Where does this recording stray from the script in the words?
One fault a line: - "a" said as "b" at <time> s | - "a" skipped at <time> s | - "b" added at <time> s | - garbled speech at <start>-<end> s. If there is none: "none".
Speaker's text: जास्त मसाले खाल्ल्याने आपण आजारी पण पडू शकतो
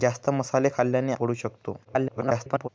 - "आपण आजारी पण" skipped at 1.1 s
- garbled speech at 1.8-2.7 s